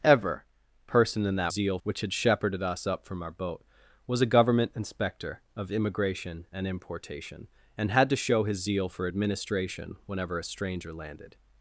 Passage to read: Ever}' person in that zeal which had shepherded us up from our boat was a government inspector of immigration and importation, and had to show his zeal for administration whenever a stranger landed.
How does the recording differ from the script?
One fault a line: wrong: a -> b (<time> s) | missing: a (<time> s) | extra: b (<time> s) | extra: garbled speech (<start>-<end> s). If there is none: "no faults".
no faults